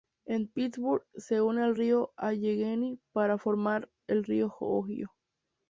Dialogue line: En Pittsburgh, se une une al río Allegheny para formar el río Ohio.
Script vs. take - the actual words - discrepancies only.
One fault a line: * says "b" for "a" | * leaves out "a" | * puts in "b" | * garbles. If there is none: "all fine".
* leaves out "une"